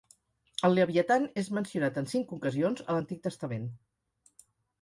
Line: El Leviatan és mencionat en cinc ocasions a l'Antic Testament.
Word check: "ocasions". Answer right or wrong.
right